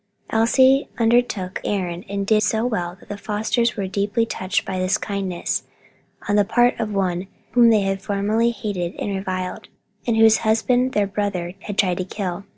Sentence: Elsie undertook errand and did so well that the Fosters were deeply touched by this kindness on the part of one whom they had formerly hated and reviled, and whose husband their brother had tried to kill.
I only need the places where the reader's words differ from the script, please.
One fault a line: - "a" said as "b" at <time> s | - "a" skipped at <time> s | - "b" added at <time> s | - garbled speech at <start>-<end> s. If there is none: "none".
none